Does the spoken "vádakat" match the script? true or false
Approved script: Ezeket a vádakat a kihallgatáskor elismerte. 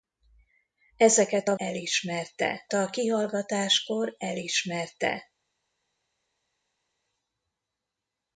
false